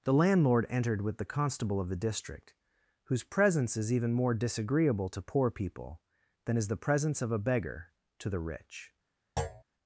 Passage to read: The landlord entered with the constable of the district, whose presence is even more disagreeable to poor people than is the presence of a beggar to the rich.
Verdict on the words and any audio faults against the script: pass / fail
fail